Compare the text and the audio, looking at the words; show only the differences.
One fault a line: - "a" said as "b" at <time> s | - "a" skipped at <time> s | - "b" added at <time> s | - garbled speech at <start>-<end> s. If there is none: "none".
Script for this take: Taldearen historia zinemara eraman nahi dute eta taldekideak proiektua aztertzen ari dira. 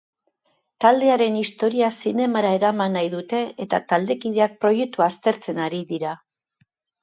none